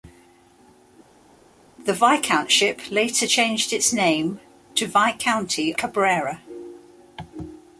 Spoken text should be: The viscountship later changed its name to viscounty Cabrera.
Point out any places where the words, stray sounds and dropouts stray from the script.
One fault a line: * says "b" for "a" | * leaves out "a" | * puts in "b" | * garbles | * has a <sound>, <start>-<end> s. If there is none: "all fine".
all fine